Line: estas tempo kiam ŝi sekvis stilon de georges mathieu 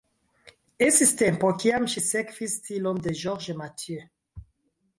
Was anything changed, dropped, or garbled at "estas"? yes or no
yes